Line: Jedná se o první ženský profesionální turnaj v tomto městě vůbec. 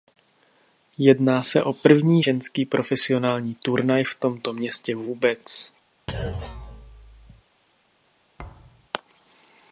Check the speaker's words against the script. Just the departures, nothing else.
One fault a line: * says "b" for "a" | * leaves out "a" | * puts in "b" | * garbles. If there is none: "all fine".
all fine